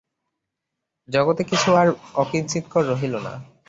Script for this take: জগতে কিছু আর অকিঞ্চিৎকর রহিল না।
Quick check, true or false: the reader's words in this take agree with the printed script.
true